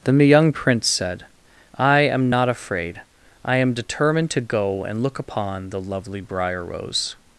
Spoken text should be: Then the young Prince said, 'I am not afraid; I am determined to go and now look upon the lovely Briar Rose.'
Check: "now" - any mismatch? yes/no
yes